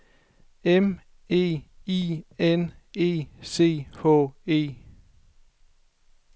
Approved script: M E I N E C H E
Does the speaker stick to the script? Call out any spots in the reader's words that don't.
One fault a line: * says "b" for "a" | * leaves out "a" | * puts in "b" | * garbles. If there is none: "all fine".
all fine